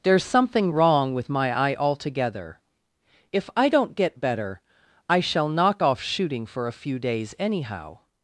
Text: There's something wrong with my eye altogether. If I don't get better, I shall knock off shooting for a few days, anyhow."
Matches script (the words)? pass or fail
pass